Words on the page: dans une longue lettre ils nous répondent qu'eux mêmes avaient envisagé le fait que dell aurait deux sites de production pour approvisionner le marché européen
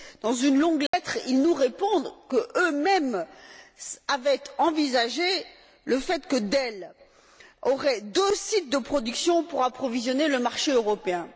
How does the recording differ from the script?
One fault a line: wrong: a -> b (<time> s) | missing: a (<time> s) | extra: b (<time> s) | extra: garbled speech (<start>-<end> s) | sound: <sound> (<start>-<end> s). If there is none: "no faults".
sound: dropout (0.9-0.9 s)